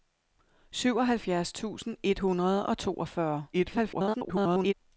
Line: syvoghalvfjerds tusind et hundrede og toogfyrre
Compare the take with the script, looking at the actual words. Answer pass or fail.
fail